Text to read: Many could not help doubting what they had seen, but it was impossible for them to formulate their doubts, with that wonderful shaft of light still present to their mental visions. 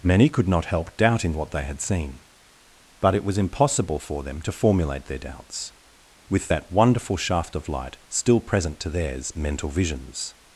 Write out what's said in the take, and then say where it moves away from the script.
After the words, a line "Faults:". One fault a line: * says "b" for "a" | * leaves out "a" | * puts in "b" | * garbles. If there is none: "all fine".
Many could not help doubting what they had seen, but it was impossible for them to formulate their doubts, with that wonderful shaft of light still present to theirs mental visions.
Faults:
* says "theirs" for "their"